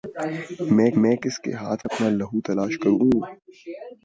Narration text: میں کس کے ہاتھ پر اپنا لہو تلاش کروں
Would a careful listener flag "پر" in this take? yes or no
yes